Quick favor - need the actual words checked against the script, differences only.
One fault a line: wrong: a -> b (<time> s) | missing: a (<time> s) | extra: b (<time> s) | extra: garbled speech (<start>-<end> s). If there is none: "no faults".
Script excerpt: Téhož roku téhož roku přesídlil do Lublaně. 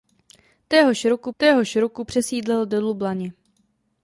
no faults